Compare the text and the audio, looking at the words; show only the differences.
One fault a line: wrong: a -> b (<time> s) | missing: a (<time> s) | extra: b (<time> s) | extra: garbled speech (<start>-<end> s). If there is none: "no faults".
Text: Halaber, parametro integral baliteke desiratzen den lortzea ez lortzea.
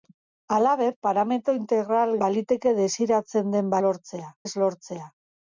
no faults